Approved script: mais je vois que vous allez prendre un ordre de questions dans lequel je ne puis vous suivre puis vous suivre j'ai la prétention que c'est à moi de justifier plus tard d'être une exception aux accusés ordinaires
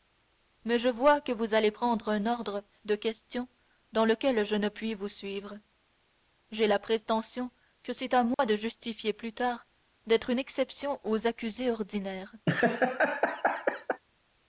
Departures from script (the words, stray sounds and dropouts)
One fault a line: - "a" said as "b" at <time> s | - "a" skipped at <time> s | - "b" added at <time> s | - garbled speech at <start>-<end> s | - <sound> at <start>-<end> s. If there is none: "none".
- "puis vous suivre" skipped at 5.6 s
- dropout at 8.3-8.4 s
- laugh at 12.5-14.0 s